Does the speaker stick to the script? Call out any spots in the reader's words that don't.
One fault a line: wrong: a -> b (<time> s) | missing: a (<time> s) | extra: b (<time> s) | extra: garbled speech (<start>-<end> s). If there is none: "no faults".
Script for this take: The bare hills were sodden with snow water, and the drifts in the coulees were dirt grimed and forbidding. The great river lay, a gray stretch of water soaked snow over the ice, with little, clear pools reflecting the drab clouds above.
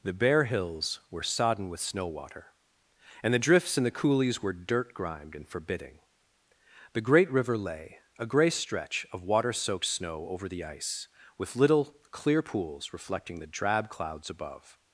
no faults